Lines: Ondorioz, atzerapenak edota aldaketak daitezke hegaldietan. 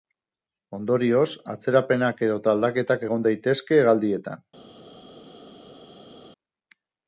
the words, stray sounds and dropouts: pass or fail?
fail